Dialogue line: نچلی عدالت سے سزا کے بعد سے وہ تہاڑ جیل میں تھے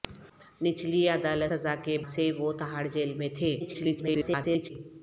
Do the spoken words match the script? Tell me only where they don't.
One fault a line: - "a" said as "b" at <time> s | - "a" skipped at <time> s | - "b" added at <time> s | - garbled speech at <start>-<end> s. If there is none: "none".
- "سے" skipped at 1.5 s
- "بعد" skipped at 2.0 s
- garbled speech at 3.6-4.7 s